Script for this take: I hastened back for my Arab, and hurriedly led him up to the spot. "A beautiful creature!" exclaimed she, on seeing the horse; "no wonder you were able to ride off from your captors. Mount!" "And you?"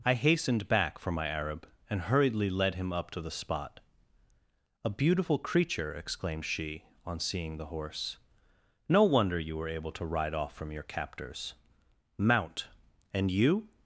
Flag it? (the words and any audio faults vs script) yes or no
no